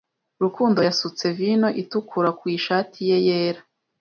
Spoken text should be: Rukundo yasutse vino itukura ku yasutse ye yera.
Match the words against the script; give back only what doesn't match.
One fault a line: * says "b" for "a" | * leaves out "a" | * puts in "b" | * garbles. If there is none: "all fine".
* says "ishati" for "yasutse"